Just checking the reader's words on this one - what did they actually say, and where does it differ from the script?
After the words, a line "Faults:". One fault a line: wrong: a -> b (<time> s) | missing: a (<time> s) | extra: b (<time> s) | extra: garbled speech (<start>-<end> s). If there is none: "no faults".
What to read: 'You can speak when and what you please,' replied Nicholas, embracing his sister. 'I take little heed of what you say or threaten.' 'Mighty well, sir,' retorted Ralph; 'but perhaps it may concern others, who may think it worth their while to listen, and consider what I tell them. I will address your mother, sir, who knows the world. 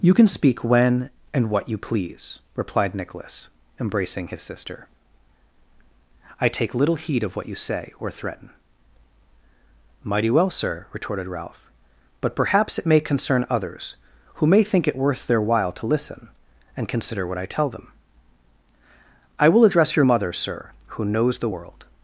'You can speak when and what you please,' replied Nicholas, embracing his sister. 'I take little heed of what you say or threaten.' 'Mighty well, sir,' retorted Ralph; 'but perhaps it may concern others, who may think it worth their while to listen, and consider what I tell them. I will address your mother, sir, who knows the world.
Faults:
no faults